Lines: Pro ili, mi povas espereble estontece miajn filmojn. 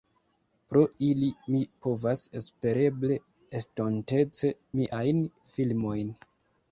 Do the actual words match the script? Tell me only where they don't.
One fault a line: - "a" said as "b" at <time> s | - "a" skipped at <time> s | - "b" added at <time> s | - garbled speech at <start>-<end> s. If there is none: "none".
none